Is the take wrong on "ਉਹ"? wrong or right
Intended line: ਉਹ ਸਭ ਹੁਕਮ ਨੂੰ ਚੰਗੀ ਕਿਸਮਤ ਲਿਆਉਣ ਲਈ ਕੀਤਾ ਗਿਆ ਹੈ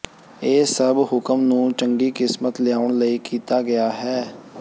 wrong